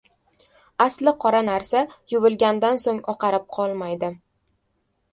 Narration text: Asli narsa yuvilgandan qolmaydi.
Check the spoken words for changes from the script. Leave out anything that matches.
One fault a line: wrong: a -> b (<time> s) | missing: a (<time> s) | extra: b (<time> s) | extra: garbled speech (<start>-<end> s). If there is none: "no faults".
extra: qora (1.2 s)
extra: so‘ng oqarib (2.9 s)